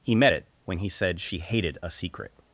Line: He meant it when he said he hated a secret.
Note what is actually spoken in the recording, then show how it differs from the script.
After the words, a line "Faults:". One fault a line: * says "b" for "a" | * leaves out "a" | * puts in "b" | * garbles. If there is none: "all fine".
He met it when he said she hated a secret.
Faults:
* says "met" for "meant"
* says "she" for "he"